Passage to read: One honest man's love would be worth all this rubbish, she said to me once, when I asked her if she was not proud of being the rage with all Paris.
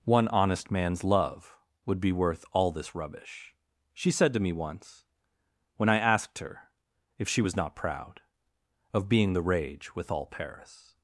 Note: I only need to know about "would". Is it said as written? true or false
true